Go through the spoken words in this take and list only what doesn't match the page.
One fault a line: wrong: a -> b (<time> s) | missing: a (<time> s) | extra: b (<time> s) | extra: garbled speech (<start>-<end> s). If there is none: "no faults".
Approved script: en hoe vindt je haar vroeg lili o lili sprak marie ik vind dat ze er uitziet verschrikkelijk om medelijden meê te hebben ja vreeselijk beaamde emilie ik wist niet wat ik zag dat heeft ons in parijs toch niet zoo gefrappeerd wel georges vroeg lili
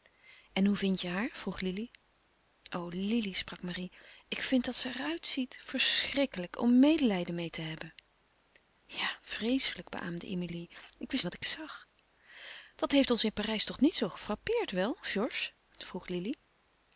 missing: niet (11.2 s)